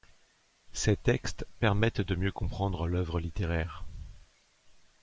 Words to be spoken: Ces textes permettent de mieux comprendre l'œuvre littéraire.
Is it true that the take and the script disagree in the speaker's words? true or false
false